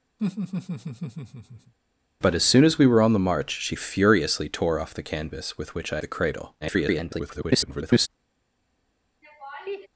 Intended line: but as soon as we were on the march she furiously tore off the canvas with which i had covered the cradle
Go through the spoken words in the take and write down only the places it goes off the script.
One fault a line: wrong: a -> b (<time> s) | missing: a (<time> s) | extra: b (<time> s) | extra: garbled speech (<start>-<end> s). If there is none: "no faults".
missing: had covered (6.0 s)
extra: garbled speech (6.6-8.1 s)